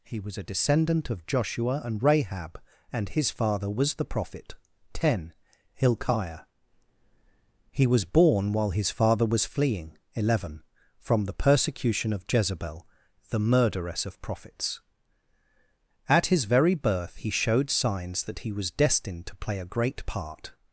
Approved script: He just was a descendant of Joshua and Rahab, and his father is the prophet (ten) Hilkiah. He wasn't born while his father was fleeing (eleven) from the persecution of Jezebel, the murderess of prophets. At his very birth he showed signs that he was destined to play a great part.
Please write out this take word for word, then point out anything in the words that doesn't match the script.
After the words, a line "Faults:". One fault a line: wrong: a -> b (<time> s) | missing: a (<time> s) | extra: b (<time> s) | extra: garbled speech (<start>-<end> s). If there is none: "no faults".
He was a descendant of Joshua and Rahab, and his father was the prophet (ten) Hilkiah. He was born while his father was fleeing (eleven) from the persecution of Jezebel, the murderess of prophets. At his very birth he showed signs that he was destined to play a great part.
Faults:
missing: just (0.2 s)
wrong: is -> was (3.7 s)
wrong: wasn't -> was (7.8 s)